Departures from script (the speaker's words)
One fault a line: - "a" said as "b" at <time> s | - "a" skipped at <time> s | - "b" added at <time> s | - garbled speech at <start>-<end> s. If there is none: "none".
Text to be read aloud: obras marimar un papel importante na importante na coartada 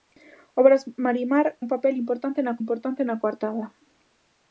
none